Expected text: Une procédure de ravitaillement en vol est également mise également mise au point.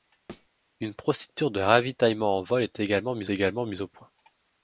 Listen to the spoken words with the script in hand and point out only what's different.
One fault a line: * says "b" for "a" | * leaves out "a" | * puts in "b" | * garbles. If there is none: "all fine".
all fine